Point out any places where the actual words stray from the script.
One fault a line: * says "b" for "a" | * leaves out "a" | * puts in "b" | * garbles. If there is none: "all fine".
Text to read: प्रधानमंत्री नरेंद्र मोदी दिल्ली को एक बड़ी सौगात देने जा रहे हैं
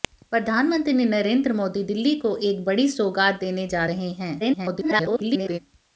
* garbles